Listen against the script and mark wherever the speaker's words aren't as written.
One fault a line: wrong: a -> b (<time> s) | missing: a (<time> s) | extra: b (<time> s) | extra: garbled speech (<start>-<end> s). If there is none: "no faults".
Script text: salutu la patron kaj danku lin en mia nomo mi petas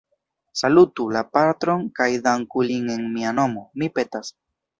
no faults